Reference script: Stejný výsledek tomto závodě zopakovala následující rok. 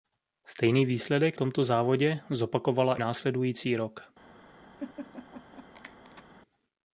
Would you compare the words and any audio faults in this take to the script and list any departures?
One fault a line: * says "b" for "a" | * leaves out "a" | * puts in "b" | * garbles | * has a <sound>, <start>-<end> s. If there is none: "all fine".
* has a laugh, 4.8-6.2 s